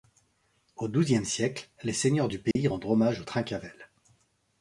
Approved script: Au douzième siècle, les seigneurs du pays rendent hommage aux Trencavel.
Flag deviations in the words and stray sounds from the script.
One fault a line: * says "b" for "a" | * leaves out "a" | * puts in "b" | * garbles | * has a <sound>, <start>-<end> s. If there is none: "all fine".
* has a dropout, 2.5-2.6 s